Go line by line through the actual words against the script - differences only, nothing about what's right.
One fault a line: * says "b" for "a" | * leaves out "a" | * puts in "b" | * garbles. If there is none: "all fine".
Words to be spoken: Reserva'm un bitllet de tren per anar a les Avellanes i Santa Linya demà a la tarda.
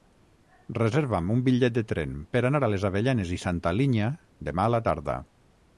all fine